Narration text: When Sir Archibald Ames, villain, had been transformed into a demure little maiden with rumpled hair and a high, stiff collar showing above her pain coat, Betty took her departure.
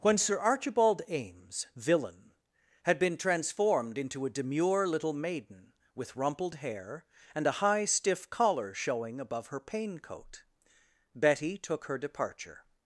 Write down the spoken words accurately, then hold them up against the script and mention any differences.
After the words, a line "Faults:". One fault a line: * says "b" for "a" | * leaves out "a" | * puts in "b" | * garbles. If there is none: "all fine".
When Sir Archibald Ames, villain, had been transformed into a demure little maiden with rumpled hair and a high, stiff collar showing above her pain coat, Betty took her departure.
Faults:
all fine